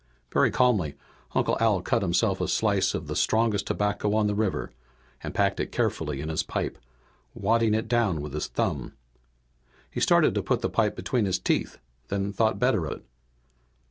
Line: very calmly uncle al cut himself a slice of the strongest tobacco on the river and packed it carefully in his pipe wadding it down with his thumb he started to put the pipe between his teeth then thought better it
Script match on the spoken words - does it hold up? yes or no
yes